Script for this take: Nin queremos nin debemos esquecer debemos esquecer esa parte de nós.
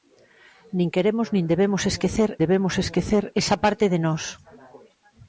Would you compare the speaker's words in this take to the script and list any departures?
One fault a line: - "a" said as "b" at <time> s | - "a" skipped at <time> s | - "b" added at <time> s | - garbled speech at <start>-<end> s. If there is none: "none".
none